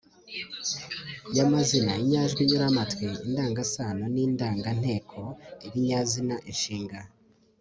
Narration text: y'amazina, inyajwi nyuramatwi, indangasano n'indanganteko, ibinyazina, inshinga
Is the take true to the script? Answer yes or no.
yes